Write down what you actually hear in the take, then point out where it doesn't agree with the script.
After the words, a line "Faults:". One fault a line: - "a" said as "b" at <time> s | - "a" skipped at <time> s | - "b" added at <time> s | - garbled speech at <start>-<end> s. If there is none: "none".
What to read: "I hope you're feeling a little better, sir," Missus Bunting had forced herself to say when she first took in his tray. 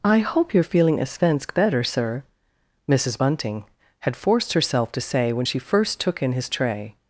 "I hope you're feeling a svensk better, sir," Missus Bunting had forced herself to say when she first took in his tray.
Faults:
- "little" said as "svensk" at 1.0 s